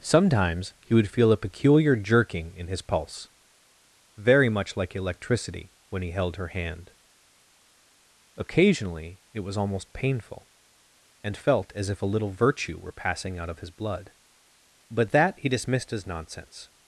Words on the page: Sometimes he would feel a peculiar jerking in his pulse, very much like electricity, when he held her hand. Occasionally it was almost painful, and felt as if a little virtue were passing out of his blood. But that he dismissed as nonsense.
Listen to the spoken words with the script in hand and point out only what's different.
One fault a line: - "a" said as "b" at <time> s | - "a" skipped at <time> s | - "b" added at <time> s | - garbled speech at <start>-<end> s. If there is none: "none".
none